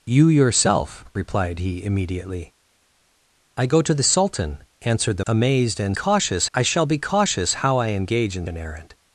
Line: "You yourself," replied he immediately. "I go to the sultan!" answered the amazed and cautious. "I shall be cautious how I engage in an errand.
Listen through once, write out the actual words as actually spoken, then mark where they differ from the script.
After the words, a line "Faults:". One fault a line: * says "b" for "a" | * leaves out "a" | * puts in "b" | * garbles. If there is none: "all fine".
"You yourself," replied he immediately. "I go to the sultan!" answered the amazed and cautious. "I shall be cautious how I engage in an errand.
Faults:
all fine